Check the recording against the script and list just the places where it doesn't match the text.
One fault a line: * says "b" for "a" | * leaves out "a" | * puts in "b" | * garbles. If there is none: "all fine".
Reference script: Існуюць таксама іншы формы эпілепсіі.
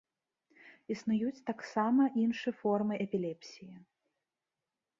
all fine